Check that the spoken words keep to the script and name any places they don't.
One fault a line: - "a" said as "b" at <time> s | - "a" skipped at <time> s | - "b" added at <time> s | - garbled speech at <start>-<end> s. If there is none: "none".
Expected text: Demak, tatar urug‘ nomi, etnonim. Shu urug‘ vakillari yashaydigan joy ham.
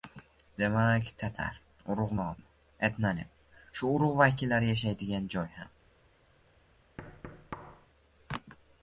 none